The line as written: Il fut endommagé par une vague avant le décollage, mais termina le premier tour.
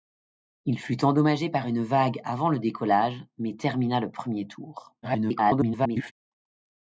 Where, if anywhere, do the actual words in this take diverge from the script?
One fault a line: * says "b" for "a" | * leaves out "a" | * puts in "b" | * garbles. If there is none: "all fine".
* garbles